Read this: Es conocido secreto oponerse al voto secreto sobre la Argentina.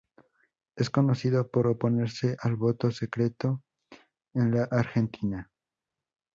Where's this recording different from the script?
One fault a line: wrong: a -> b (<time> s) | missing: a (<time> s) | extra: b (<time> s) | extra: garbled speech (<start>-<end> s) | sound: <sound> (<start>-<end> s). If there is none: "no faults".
wrong: secreto -> por (1.5 s)
wrong: sobre -> en (4.4 s)